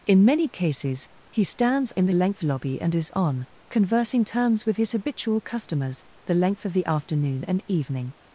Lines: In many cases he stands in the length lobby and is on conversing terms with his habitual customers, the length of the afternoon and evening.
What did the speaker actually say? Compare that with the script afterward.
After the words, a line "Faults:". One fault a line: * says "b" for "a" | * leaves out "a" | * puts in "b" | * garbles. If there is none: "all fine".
In many cases he stands in the length lobby and is on conversing terms with his habitual customers, the length of the afternoon and evening.
Faults:
all fine